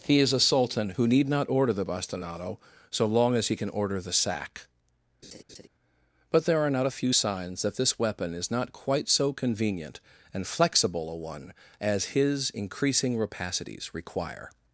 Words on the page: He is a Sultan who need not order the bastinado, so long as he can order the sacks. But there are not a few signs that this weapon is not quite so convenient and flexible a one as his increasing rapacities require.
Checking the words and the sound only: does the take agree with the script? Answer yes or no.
no